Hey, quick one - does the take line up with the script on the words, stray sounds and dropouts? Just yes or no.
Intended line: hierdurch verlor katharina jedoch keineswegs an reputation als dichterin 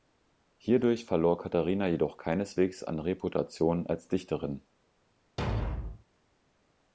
no